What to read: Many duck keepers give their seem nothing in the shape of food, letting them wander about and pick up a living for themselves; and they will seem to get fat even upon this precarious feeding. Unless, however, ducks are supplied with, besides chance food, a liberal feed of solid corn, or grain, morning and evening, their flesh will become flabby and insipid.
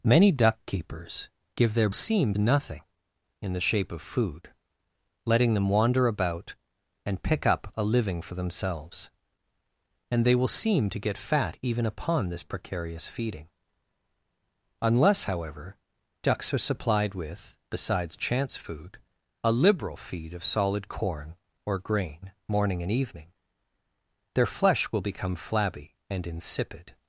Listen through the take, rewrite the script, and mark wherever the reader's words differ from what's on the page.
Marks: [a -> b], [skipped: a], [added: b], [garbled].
Many duck keepers give their seem nothing in the shape of food, letting them wander about and pick up a living for themselves; and they will seem to get fat even upon this precarious feeding. Unless, however, ducks are supplied with, besides chance food, a liberal feed of solid corn, or grain, morning and evening, their flesh will become flabby and insipid.